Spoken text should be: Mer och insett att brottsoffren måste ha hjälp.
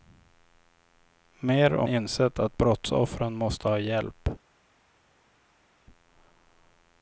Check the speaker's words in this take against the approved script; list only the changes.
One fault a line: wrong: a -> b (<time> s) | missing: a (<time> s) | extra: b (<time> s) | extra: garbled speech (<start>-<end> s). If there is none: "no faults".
no faults